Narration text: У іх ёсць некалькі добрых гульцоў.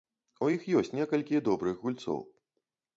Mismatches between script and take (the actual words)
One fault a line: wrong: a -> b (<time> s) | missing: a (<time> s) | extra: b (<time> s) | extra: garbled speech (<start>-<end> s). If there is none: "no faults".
no faults